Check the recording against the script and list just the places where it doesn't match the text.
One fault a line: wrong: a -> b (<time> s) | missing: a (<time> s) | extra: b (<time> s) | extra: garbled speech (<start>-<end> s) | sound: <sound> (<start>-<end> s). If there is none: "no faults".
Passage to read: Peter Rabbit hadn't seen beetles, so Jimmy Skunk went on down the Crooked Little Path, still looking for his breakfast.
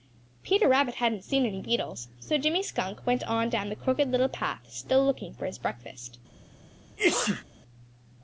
extra: any (1.4 s)
sound: sneeze (7.0-7.4 s)